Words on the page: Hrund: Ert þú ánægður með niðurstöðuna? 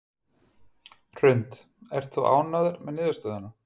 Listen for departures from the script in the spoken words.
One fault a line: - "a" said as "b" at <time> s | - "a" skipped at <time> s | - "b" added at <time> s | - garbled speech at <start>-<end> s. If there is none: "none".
none